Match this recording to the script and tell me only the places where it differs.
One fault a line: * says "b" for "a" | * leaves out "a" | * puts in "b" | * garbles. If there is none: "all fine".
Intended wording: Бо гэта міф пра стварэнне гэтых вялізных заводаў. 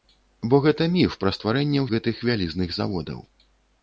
all fine